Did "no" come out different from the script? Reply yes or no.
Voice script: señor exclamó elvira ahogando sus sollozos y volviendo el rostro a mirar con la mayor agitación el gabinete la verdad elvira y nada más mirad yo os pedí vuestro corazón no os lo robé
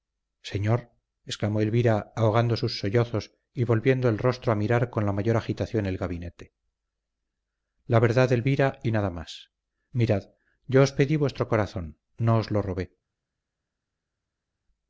no